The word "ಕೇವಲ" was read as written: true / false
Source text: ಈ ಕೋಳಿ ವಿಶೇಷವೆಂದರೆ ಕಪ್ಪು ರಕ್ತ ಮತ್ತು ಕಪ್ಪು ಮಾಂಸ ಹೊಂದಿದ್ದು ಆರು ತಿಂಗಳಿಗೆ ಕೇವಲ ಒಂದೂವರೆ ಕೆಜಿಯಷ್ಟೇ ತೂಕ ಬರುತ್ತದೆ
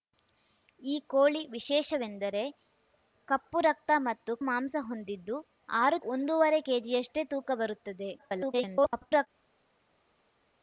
false